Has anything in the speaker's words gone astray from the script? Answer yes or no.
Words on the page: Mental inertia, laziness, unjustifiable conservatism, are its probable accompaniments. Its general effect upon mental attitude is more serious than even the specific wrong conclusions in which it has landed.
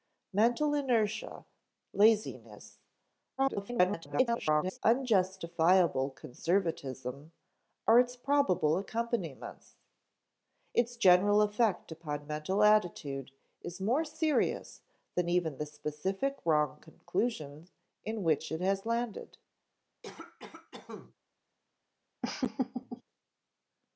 yes